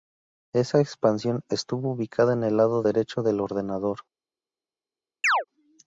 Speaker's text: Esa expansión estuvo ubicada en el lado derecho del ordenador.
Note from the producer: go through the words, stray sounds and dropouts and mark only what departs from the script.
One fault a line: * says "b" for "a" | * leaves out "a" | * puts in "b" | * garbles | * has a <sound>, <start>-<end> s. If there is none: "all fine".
* has a chirp, 5.2-5.4 s